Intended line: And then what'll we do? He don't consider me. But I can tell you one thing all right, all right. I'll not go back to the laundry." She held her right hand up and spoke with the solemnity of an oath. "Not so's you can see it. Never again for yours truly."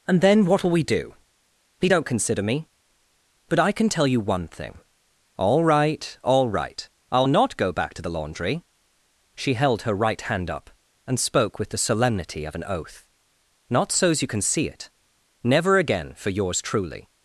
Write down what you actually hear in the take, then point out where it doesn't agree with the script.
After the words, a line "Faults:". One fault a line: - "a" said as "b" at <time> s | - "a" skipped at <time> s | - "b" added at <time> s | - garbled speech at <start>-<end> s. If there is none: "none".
And then what'll we do? He don't consider me. But I can tell you one thing all right, all right. I'll not go back to the laundry." She held her right hand up and spoke with the solemnity of an oath. "Not so's you can see it. Never again for yours truly."
Faults:
none